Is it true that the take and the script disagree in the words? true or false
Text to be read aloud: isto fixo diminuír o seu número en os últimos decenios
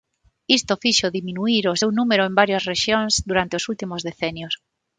true